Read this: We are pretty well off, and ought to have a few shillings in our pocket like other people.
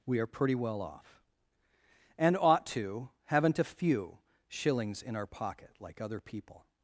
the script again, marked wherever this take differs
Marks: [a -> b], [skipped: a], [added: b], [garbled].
We are pretty well off, and ought to [have -> haven't] a few shillings in our pocket like other people.